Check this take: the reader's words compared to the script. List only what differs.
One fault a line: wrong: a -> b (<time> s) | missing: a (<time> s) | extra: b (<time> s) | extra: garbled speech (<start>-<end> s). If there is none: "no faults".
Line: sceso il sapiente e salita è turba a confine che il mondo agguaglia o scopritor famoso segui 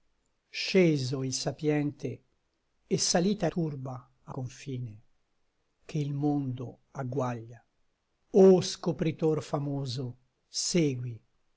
no faults